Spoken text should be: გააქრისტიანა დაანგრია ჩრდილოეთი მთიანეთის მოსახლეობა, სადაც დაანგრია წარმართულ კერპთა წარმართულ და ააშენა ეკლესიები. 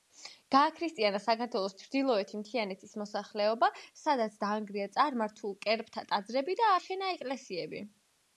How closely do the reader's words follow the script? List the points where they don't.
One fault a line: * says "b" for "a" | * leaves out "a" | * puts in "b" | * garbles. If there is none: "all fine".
* says "საქართველოს" for "დაანგრია"
* says "ტაძრები" for "წარმართულ"